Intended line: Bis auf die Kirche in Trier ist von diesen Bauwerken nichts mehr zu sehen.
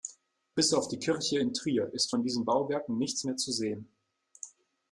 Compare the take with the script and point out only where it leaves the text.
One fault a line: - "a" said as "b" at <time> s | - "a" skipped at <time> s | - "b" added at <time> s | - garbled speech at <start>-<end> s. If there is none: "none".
none